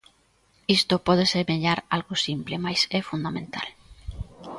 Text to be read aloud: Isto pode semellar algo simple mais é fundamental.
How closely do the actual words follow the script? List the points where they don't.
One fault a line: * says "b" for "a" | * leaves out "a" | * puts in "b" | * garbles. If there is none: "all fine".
all fine